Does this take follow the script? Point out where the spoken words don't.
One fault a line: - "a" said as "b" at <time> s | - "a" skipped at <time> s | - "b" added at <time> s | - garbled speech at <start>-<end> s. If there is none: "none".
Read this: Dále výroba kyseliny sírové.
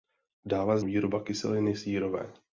none